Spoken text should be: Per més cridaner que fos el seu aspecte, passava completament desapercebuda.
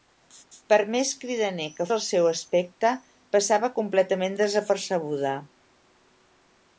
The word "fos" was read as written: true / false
false